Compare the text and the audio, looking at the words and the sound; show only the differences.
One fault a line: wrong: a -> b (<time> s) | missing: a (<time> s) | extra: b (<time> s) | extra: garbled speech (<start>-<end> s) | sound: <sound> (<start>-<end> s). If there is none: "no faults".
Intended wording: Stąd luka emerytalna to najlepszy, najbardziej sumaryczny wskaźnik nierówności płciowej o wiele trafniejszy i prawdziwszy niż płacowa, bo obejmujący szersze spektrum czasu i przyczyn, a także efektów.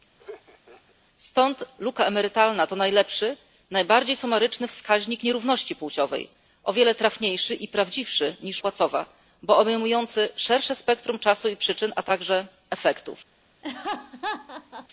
sound: laugh (0.2-1.0 s)
sound: laugh (13.6-14.9 s)